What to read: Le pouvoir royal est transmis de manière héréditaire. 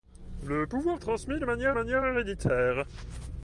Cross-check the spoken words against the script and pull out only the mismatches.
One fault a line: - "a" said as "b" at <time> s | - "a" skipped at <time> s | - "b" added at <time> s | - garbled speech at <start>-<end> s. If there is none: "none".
- "royal" skipped at 1.0 s
- "manière" added at 1.7 s